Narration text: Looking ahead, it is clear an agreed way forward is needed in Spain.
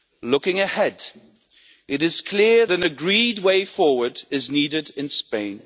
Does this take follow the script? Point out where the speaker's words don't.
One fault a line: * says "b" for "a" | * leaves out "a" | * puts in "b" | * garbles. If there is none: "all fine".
all fine